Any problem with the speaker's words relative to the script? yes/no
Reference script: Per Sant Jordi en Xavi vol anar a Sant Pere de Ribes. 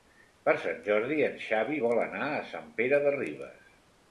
no